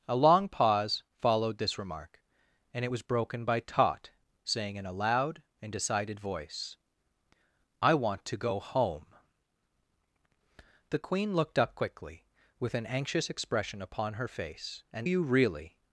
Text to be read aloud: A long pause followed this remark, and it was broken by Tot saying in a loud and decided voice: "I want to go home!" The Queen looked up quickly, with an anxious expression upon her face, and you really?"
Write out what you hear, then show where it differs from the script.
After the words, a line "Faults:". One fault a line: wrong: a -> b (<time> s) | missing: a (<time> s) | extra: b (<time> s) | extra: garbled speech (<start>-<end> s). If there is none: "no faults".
A long pause followed this remark, and it was broken by Tot saying in a loud and decided voice: "I want to go home!" The Queen looked up quickly, with an anxious expression upon her face, and you really?"
Faults:
no faults